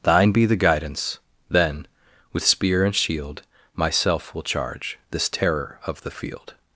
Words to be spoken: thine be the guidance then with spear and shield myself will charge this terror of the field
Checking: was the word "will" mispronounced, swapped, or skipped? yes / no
no